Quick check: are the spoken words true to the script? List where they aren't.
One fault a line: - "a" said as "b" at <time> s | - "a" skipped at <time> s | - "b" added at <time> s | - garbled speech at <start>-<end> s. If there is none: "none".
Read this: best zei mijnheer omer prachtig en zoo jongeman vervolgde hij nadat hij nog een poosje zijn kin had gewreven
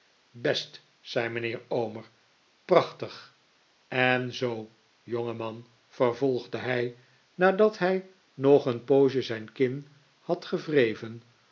none